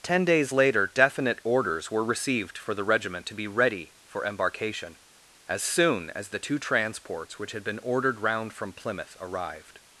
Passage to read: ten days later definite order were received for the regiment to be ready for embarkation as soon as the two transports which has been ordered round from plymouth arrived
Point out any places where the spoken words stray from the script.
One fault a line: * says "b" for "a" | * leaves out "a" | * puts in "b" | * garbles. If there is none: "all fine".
* says "orders" for "order"
* says "had" for "has"